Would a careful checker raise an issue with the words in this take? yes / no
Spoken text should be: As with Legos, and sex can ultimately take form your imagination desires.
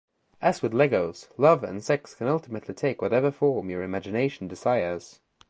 yes